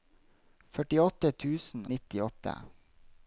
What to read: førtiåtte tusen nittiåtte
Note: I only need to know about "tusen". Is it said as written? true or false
true